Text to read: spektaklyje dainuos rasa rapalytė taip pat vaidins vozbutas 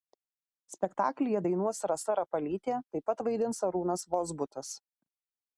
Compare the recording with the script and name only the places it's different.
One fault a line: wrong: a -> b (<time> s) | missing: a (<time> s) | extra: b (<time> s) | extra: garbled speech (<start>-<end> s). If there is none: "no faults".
extra: arūnas (3.7 s)